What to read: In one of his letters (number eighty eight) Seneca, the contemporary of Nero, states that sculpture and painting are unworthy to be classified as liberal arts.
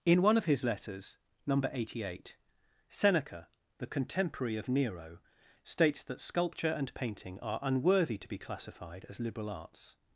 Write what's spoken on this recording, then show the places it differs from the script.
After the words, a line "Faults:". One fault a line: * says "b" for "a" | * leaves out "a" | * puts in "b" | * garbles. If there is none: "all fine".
In one of his letters (number eighty eight) Seneca, the contemporary of Nero, states that sculpture and painting are unworthy to be classified as liberal arts.
Faults:
all fine